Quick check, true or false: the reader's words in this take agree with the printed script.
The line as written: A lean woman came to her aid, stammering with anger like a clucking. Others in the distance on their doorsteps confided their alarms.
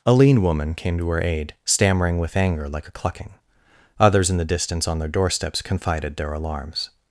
true